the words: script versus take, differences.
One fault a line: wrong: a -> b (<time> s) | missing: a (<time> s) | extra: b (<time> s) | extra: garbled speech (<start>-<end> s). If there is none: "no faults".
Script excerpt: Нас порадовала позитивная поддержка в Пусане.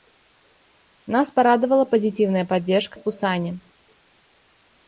no faults